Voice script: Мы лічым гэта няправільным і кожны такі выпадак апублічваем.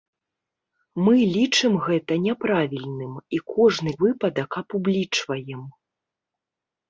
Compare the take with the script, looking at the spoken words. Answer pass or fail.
fail